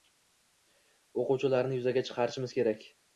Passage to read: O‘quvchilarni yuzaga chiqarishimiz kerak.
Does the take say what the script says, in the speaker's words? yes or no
yes